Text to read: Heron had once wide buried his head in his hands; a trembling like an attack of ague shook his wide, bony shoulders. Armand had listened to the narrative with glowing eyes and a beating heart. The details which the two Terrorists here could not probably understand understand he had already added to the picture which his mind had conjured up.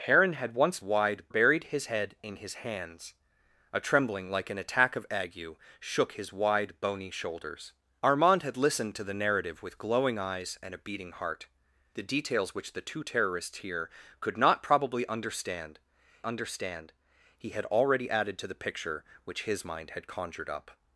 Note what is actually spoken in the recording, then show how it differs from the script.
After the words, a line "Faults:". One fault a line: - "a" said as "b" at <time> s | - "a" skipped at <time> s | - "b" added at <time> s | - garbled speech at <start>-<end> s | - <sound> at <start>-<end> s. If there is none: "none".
Heron had once wide buried his head in his hands; a trembling like an attack of ague shook his wide, bony shoulders. Armand had listened to the narrative with glowing eyes and a beating heart. The details which the two Terrorists here could not probably understand understand he had already added to the picture which his mind had conjured up.
Faults:
none